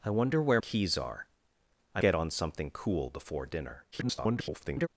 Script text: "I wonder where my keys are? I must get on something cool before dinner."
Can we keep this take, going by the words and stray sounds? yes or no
no